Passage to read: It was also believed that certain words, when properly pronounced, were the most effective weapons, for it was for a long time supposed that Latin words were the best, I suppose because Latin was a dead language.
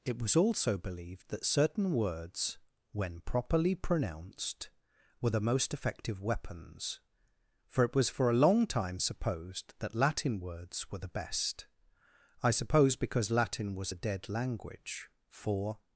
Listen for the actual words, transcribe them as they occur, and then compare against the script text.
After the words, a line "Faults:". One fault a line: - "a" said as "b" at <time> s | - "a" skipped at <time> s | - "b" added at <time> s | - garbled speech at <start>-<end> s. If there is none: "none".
It was also believed that certain words, when properly pronounced, were the most effective weapons, for it was for a long time supposed that Latin words were the best, I suppose because Latin was a dead language. For
Faults:
- "For" added at 15.3 s